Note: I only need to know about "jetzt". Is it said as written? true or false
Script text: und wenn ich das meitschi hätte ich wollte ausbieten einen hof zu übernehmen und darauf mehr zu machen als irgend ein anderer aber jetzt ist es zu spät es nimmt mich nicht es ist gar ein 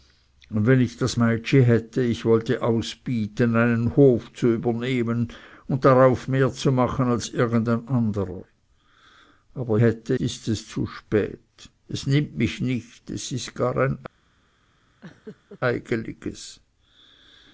false